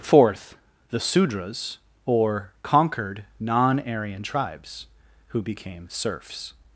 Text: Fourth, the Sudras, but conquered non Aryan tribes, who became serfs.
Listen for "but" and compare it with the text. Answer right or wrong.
wrong